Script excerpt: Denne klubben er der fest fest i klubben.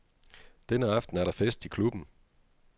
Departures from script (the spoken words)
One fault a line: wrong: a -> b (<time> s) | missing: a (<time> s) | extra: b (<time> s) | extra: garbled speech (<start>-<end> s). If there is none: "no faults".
wrong: klubben -> aften (0.9 s)
missing: fest (1.6 s)